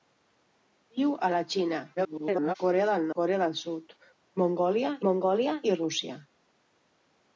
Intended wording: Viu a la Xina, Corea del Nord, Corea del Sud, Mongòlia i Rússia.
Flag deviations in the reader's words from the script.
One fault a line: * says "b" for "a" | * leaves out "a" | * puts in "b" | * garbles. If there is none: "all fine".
* garbles
* leaves out "Nord"
* puts in "Mongòlia"